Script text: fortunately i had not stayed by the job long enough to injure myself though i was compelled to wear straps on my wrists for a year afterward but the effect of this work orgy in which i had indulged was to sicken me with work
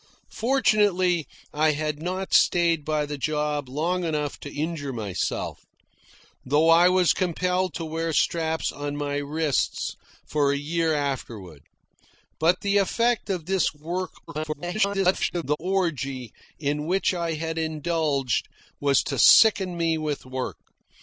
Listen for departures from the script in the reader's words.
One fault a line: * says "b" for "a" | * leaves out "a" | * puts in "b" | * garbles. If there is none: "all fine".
* garbles